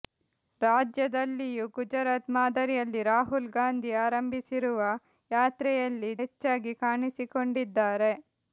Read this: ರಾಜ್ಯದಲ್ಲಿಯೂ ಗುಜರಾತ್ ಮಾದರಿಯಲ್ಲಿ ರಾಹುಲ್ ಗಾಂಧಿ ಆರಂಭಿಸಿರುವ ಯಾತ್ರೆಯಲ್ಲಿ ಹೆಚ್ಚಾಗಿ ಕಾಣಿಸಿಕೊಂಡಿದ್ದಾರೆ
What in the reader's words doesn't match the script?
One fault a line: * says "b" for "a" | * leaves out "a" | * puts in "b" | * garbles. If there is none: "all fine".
all fine